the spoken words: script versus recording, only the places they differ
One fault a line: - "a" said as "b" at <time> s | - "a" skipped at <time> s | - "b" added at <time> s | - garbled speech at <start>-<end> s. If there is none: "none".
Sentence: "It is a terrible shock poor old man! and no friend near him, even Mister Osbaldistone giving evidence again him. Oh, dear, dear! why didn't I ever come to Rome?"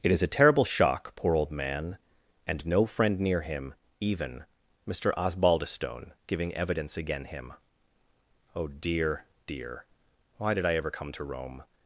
- "didn't" said as "did" at 10.5 s